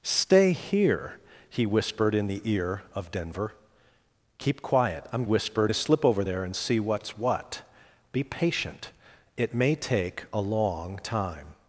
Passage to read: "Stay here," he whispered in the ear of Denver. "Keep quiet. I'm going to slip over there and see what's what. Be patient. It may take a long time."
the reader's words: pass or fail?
fail